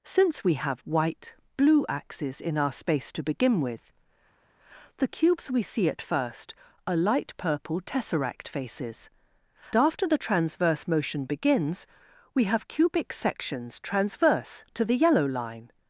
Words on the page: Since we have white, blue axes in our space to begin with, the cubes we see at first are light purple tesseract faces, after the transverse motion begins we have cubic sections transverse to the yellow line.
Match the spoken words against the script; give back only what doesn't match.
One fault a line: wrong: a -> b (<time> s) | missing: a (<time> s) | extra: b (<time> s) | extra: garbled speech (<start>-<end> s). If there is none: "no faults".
no faults